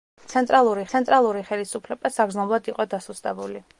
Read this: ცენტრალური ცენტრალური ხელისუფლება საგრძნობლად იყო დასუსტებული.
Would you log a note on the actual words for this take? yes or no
no